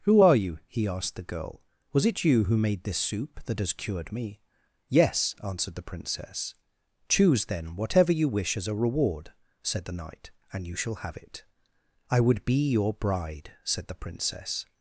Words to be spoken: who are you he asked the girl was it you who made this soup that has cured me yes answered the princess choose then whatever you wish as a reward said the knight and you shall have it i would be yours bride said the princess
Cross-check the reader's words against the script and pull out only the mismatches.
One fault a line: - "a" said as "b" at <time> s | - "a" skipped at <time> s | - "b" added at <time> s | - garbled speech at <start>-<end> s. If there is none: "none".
- "yours" said as "your" at 12.7 s